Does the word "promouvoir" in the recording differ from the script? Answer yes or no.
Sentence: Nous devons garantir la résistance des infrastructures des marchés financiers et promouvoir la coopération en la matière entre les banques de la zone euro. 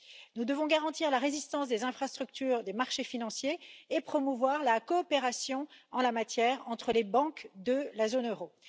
no